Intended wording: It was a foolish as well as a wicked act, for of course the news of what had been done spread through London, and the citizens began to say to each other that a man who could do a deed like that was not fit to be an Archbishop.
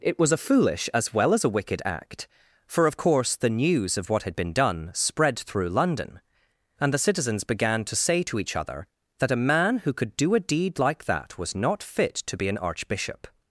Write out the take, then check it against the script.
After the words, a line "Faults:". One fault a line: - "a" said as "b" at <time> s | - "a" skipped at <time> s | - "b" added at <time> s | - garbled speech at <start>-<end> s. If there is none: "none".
It was a foolish as well as a wicked act, for of course the news of what had been done spread through London, and the citizens began to say to each other that a man who could do a deed like that was not fit to be an Archbishop.
Faults:
none